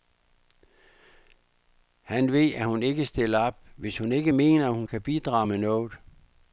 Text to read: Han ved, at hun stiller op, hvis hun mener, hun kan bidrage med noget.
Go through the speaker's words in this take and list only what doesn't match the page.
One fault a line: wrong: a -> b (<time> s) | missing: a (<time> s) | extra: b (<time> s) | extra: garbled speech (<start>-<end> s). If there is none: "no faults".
extra: ikke (2.8 s)
extra: ikke (4.1 s)